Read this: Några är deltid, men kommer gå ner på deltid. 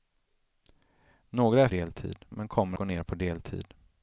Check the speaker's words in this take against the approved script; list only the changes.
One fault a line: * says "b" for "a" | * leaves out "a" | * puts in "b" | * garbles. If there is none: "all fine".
all fine